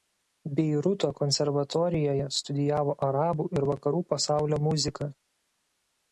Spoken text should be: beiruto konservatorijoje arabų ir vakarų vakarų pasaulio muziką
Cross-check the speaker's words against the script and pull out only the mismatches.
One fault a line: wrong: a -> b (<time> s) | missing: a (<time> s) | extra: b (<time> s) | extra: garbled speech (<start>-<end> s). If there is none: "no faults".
extra: studijavo (2.4 s)
missing: vakarų (4.0 s)